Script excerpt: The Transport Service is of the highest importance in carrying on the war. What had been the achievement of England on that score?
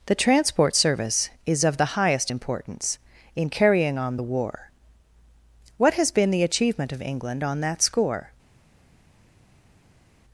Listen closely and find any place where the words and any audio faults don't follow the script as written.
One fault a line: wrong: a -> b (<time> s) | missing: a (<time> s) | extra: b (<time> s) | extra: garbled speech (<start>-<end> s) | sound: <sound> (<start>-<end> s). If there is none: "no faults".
wrong: had -> has (5.9 s)